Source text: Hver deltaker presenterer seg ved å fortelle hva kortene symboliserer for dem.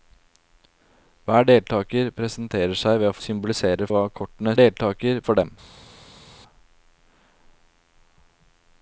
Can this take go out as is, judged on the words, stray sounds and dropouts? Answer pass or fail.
fail